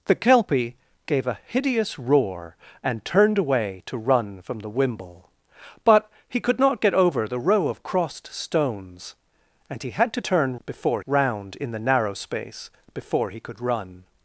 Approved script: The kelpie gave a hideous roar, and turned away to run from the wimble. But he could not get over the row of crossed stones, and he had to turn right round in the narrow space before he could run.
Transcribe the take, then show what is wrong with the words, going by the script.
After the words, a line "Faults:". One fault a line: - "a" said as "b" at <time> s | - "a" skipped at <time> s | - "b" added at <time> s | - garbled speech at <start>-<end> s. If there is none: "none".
The kelpie gave a hideous roar, and turned away to run from the wimble. But he could not get over the row of crossed stones, and he had to turn before round in the narrow space before he could run.
Faults:
- "right" said as "before" at 10.6 s